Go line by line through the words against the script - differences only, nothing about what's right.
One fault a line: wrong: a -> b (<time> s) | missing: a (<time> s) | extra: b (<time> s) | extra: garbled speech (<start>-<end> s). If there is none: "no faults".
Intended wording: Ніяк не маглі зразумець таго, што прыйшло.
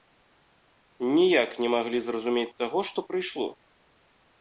no faults